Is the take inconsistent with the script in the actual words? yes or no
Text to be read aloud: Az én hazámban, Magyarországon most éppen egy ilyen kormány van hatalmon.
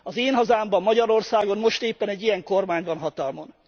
no